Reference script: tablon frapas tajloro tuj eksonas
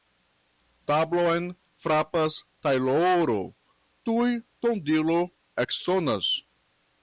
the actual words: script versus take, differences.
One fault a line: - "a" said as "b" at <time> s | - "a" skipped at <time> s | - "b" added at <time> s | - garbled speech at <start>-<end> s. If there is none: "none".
- "tondilo" added at 4.7 s